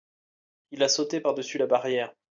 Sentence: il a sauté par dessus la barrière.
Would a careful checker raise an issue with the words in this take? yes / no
no